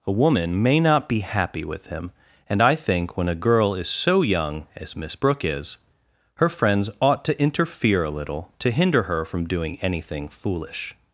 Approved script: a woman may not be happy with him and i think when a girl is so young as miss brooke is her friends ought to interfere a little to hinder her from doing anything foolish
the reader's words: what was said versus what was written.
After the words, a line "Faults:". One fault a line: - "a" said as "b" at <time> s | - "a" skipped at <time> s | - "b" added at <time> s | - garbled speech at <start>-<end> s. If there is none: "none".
a woman may not be happy with him and i think when a girl is so young as miss brooke is her friends ought to interfere a little to hinder her from doing anything foolish
Faults:
none